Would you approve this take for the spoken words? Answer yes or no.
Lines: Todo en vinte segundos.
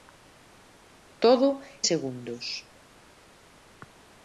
no